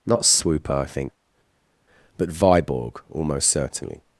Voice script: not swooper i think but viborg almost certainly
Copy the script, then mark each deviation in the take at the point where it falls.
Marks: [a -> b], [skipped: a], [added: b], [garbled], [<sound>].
not swooper i think but viborg almost certainly